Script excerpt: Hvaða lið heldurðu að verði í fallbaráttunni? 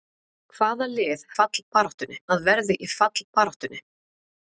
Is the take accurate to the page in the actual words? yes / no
no